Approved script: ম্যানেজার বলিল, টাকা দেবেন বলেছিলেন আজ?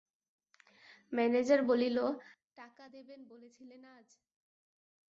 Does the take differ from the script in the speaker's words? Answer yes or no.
no